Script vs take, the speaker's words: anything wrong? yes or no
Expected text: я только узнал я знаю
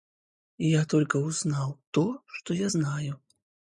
yes